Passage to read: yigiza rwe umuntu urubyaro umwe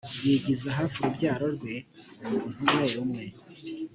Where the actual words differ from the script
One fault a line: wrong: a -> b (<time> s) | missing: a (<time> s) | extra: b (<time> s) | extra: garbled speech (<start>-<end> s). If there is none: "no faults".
extra: hafi urubyaro (0.8 s)
wrong: urubyaro -> umwe (2.6 s)